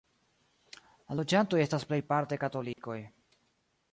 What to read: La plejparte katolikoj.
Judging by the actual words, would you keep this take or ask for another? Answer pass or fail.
fail